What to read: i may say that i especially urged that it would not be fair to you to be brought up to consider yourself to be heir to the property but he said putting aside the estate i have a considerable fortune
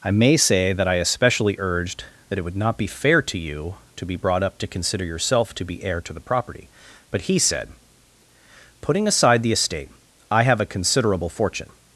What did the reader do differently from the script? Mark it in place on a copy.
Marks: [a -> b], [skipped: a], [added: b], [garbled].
i may say that i especially urged that it would not be fair to you to be brought up to consider yourself to be heir to the property but he said putting aside the estate i have a considerable fortune